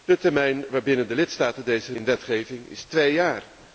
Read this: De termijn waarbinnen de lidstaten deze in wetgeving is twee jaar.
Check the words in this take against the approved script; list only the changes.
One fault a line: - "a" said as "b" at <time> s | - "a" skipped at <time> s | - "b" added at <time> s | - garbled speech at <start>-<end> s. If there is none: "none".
none